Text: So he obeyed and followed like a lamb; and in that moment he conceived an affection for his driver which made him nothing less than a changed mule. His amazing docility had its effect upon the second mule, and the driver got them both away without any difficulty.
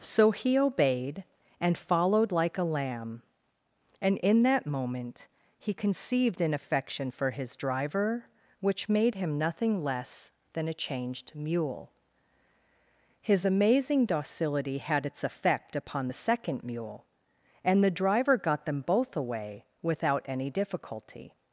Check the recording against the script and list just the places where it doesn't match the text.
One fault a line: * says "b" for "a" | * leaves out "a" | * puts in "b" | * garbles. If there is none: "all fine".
all fine